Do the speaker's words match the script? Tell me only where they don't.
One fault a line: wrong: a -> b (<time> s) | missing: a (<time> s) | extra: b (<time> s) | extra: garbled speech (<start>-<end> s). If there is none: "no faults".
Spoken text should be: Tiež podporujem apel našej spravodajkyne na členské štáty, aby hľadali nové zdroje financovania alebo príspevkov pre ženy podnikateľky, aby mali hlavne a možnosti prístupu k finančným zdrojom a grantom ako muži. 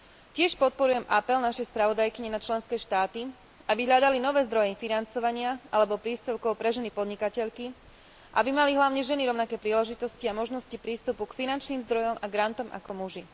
extra: ženy rovnaké príležitosti (9.0 s)